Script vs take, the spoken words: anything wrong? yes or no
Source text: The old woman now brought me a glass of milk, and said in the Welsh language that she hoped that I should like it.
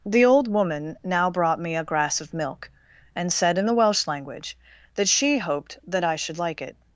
yes